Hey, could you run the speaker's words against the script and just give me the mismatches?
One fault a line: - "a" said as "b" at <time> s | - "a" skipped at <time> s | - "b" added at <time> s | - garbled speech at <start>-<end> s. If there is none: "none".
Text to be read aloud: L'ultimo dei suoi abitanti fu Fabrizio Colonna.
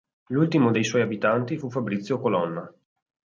none